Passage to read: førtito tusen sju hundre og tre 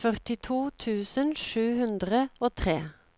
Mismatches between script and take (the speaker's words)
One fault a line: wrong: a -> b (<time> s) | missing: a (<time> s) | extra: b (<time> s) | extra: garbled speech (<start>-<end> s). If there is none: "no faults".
no faults